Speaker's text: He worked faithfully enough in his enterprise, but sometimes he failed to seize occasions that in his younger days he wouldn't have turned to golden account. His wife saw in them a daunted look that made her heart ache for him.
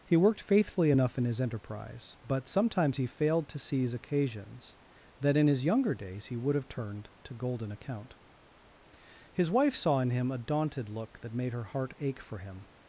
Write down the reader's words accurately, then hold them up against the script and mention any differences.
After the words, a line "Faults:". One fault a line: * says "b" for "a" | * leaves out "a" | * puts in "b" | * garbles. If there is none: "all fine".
He worked faithfully enough in his enterprise, but sometimes he failed to seize occasions that in his younger days he would have turned to golden account. His wife saw in him a daunted look that made her heart ache for him.
Faults:
* says "would" for "wouldn't"
* says "him" for "them"